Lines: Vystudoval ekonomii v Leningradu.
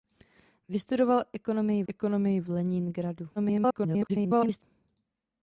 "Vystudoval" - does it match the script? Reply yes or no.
yes